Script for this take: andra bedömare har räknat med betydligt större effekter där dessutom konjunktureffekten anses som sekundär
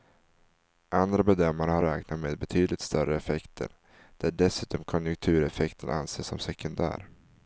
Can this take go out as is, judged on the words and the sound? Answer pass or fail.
pass